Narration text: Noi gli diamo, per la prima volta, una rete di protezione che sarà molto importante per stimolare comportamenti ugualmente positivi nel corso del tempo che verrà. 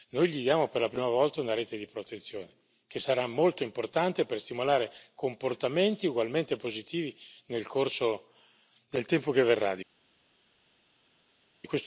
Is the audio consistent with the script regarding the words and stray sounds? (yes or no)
yes